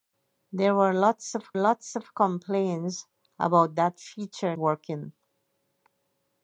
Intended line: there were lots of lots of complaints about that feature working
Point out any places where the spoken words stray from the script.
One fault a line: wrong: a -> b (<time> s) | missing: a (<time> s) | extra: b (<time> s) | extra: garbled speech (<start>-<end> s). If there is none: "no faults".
no faults